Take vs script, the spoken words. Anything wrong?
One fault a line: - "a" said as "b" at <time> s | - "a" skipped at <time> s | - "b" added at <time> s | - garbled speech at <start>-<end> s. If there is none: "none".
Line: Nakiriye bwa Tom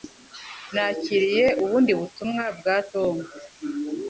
- "ubundi butumwa" added at 1.6 s